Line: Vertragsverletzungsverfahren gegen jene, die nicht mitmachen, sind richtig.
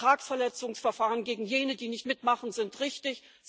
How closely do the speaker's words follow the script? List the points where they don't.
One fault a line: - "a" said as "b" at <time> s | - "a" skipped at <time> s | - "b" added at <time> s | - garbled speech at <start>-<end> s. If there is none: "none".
none